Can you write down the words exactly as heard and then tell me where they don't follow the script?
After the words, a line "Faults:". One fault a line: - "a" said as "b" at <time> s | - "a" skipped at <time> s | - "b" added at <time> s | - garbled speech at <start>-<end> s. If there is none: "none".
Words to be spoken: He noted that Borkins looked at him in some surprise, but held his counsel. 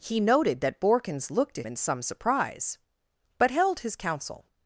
He noted that Borkins looked at in some surprise, but held his counsel.
Faults:
- "him" skipped at 1.7 s